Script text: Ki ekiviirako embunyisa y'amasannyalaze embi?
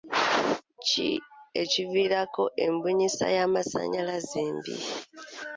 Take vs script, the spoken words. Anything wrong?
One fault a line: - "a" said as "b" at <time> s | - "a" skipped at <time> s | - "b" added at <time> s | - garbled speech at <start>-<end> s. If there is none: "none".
none